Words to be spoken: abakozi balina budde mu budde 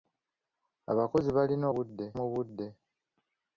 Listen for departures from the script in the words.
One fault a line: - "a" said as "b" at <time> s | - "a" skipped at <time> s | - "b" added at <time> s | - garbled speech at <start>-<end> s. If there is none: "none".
none